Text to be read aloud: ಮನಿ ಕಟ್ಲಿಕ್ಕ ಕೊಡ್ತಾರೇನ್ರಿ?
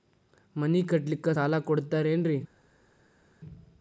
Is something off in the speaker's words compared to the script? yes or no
yes